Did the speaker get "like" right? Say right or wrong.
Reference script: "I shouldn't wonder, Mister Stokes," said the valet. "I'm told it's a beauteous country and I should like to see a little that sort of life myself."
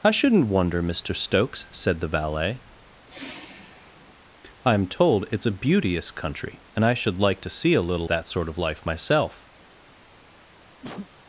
right